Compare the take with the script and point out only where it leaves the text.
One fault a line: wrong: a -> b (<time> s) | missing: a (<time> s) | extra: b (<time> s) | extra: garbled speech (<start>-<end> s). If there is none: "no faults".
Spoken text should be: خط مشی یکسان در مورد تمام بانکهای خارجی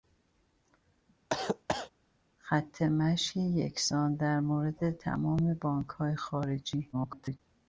extra: garbled speech (6.9-7.4 s)